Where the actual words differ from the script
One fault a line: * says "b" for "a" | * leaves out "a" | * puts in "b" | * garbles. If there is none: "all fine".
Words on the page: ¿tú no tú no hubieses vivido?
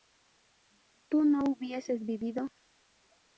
* leaves out "tú no"